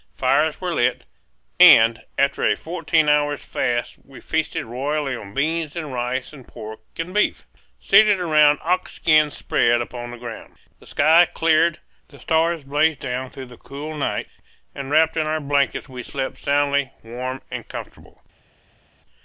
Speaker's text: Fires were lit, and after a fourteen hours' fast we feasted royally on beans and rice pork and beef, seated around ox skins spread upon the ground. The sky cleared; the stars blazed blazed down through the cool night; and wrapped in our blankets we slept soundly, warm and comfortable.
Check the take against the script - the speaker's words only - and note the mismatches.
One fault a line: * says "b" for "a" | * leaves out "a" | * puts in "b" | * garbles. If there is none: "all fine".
* puts in "and"
* leaves out "blazed"